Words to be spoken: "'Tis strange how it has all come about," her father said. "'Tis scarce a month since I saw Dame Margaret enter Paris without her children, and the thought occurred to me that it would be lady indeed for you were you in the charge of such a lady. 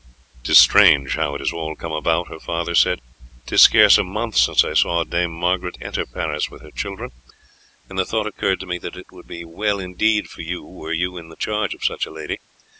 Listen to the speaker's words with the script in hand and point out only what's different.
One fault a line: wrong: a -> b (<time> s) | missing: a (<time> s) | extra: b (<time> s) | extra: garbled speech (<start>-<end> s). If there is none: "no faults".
wrong: without -> with (6.5 s)
wrong: lady -> well (9.4 s)